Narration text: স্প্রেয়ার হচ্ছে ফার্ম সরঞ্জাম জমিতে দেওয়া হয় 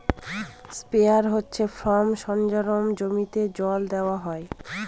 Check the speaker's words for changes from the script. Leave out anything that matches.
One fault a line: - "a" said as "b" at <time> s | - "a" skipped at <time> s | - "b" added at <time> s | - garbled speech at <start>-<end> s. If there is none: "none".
- "জল" added at 3.6 s